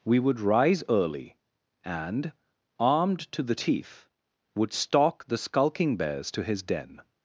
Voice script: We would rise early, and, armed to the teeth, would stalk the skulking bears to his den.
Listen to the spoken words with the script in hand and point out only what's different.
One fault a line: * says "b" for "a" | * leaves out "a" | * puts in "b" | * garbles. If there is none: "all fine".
all fine